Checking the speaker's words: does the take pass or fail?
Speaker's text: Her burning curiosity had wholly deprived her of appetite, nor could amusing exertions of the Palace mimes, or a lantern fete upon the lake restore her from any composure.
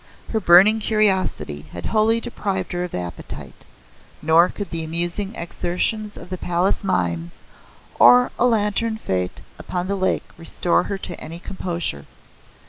fail